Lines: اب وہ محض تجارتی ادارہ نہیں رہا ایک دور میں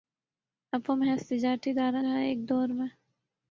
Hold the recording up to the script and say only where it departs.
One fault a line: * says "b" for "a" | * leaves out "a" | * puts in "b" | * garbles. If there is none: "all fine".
* leaves out "نہیں"